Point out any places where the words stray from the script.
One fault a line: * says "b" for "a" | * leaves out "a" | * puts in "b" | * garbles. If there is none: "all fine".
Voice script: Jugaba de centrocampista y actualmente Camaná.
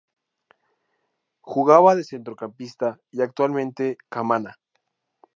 all fine